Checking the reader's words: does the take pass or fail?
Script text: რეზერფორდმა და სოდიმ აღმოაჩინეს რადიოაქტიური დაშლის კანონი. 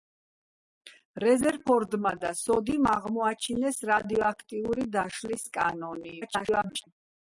fail